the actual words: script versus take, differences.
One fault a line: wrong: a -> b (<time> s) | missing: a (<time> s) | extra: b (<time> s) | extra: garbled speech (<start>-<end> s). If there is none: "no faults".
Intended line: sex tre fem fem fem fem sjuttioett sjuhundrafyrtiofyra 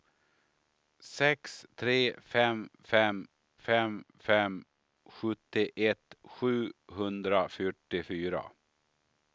no faults